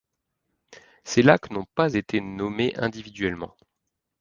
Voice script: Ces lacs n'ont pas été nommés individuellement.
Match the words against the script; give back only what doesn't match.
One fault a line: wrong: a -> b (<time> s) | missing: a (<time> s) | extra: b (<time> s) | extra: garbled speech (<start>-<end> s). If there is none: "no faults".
no faults